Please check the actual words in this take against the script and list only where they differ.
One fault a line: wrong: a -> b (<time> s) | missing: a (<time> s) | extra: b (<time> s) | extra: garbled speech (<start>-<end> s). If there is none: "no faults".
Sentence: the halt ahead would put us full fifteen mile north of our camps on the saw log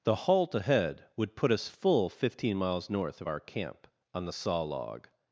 wrong: mile -> miles (2.6 s)
wrong: camps -> camp (3.4 s)